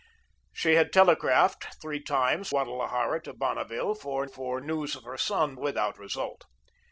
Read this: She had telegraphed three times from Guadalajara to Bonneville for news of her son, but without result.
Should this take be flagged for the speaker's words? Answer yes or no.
yes